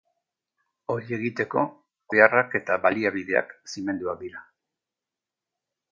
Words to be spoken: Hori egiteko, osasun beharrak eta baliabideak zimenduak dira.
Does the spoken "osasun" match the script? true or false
false